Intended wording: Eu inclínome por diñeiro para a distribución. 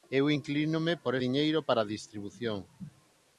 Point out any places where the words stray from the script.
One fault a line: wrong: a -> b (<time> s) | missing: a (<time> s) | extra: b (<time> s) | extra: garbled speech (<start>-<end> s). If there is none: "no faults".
no faults